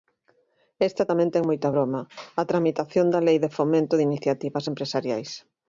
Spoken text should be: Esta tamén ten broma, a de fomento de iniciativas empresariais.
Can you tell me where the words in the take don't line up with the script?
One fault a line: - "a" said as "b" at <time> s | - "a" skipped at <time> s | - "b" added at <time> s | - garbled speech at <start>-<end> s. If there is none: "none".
- "moita" added at 1.5 s
- "tramitación da Lei" added at 2.5 s